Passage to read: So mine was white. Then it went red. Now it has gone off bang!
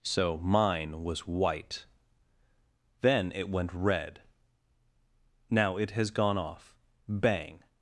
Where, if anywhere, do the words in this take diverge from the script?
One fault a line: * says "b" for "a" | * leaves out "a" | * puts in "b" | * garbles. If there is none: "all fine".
all fine